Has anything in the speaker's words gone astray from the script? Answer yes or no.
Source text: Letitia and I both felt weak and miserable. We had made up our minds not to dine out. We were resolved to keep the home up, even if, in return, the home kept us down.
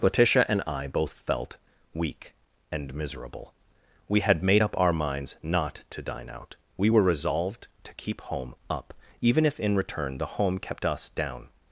yes